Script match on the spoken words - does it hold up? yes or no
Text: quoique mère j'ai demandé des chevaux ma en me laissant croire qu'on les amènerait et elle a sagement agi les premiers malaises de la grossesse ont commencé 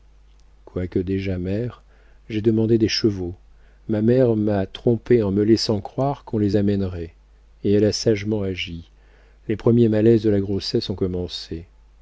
no